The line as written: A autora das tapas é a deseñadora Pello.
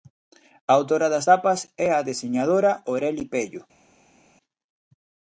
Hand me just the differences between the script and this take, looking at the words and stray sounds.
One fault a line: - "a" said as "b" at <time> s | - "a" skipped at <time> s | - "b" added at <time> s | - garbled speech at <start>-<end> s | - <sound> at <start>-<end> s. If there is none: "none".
- "Oreli" added at 2.9 s